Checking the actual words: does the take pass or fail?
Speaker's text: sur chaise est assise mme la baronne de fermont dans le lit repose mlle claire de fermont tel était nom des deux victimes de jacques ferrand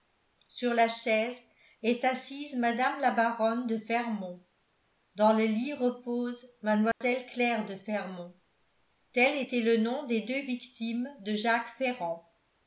fail